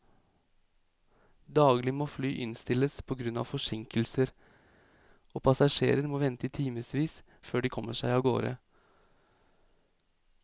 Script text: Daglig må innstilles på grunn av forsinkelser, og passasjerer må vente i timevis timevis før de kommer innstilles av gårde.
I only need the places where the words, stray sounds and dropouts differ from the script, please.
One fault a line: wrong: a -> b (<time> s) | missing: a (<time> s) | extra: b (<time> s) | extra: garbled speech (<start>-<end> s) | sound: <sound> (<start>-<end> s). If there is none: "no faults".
extra: fly (2.1 s)
missing: timevis (7.2 s)
wrong: innstilles -> seg (8.0 s)